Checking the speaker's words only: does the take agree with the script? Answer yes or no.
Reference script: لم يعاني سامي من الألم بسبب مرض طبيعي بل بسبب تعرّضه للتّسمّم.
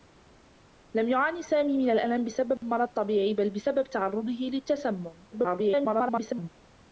no